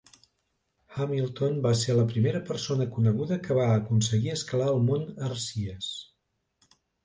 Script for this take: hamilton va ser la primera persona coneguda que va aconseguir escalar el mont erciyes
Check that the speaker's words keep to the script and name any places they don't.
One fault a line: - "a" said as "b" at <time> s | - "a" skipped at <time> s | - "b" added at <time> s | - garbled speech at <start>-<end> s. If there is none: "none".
none